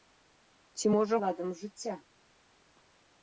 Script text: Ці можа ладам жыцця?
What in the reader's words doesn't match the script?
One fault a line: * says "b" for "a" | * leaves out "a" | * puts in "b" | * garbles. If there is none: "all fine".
all fine